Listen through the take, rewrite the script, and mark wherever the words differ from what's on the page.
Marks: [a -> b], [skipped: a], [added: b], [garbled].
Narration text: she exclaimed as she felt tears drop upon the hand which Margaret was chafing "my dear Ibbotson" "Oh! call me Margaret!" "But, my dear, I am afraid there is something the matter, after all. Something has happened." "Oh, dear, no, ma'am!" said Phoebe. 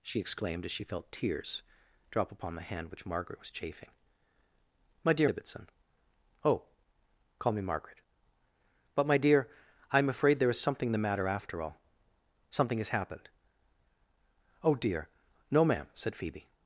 she exclaimed as she felt tears drop upon the hand which Margaret was chafing "my dear Ibbotson" "Oh! call me Margaret!" "But, my dear, I am afraid there is something the matter, after all. Something has happened." "Oh, dear, no, ma'am!" said Phoebe.